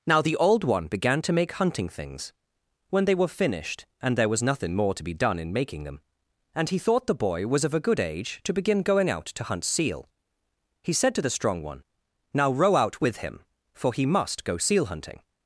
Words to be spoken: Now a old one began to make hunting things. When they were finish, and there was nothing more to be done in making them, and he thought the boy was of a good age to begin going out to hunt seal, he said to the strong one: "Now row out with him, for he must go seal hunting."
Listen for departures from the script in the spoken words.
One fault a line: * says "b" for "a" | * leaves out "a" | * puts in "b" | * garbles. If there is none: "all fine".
* says "the" for "a"
* says "finished" for "finish"